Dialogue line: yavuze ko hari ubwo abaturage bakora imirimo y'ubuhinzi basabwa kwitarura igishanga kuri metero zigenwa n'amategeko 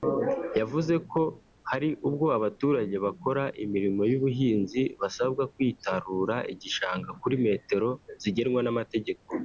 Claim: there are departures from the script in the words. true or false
false